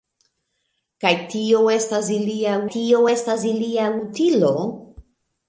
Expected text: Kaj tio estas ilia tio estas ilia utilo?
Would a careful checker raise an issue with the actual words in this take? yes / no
no